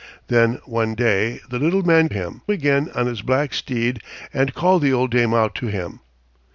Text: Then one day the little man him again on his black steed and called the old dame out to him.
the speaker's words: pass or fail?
pass